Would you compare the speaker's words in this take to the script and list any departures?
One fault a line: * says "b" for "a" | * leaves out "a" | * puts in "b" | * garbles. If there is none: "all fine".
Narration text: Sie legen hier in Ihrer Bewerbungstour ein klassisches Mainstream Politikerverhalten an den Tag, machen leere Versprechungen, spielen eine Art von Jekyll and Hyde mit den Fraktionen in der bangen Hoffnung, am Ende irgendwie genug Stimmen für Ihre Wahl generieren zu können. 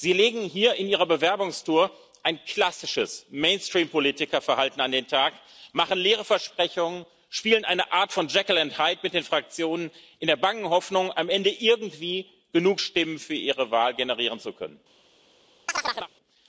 all fine